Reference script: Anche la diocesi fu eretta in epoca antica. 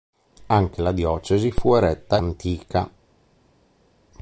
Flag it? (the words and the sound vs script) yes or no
yes